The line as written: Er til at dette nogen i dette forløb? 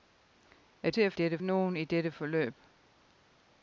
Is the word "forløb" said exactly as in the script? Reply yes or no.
yes